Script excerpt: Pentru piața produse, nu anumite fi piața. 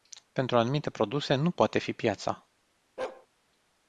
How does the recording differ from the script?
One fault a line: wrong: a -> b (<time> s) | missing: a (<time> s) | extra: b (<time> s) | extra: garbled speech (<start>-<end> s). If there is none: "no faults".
wrong: piața -> anumite (0.6 s)
wrong: anumite -> poate (1.5 s)